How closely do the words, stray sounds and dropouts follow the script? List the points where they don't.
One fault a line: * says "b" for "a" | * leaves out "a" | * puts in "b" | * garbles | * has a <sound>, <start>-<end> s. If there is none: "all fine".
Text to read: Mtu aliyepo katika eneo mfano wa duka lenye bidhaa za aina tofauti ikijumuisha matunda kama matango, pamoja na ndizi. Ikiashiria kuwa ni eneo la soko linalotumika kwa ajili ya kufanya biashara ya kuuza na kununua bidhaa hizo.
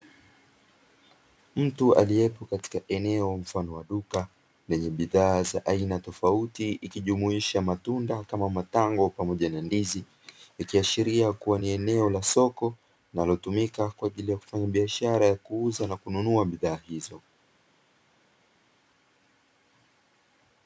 all fine